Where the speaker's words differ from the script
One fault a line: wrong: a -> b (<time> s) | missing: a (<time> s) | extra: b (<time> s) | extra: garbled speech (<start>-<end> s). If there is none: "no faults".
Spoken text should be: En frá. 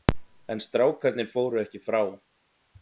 extra: strákarnir fóru ekki (0.7 s)